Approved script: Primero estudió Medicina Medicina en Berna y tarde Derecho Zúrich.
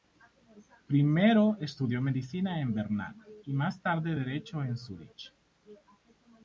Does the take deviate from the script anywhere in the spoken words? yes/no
yes